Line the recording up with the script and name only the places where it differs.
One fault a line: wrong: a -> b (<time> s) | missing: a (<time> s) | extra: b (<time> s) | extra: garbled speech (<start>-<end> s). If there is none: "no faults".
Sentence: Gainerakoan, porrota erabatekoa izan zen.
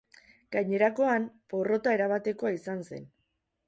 no faults